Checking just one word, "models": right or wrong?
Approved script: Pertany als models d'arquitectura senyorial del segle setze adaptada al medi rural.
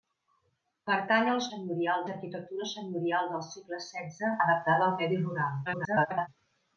wrong